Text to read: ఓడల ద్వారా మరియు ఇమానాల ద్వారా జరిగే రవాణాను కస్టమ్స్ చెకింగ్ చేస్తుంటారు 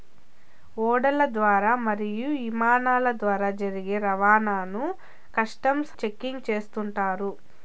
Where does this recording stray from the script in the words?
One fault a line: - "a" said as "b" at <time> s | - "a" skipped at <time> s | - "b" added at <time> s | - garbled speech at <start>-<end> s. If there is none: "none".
none